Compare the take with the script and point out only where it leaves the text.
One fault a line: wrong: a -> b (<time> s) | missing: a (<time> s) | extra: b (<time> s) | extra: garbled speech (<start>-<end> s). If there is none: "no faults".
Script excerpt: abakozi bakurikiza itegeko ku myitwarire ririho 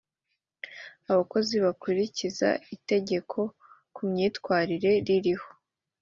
no faults